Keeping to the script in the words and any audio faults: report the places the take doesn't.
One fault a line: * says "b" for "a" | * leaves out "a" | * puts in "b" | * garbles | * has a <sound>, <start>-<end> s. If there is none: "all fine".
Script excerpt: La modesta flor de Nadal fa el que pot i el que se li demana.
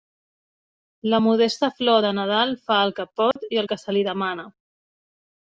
* has a dropout, 3.3-3.4 s